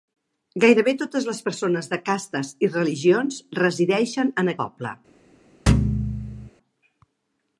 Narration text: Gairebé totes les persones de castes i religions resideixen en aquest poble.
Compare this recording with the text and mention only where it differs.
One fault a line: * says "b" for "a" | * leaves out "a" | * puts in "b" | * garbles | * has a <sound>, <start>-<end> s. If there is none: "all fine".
* leaves out "aquest"
* has a thud, 5.7-6.5 s